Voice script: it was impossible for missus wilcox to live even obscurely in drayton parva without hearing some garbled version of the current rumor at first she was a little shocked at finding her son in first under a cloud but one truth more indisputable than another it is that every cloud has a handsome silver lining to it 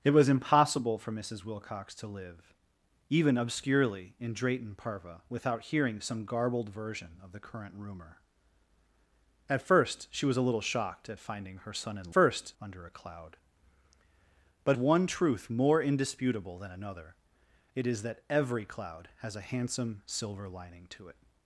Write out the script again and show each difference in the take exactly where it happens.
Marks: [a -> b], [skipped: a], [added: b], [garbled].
it was impossible for missus wilcox to live even obscurely in drayton parva without hearing some garbled version of the current rumor at first she was a little shocked at finding her son in first under a cloud but one truth more indisputable than another it is that every cloud has a handsome silver lining to it